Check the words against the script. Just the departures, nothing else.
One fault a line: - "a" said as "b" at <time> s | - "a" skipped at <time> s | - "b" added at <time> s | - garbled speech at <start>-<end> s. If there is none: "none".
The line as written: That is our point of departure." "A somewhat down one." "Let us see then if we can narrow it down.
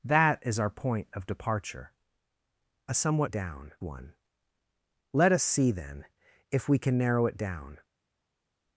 none